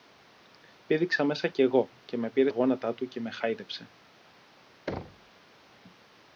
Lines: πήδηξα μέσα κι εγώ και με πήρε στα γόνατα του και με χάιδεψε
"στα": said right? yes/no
no